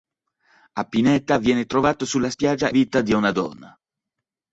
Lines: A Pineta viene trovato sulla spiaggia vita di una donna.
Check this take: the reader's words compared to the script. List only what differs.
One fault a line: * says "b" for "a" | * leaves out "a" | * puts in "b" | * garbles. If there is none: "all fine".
all fine